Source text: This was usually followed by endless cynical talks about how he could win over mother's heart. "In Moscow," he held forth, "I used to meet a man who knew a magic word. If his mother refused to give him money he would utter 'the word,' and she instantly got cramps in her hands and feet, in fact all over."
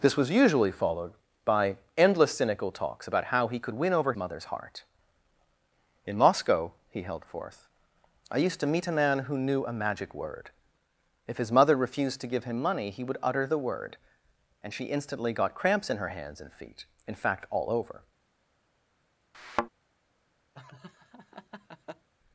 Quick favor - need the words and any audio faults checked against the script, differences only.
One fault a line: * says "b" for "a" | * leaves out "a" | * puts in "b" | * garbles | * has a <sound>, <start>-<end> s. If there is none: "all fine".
* has a thud, 19.3-19.7 s
* has a laugh, 20.5-22.1 s